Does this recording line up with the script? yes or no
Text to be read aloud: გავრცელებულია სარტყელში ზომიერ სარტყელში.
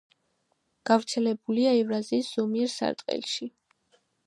no